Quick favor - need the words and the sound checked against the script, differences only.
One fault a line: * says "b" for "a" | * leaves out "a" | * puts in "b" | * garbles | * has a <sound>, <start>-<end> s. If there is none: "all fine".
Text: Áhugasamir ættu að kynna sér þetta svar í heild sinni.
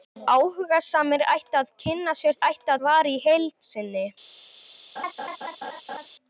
* says "ættu" for "þetta"
* has a laugh, 5.0-6.1 s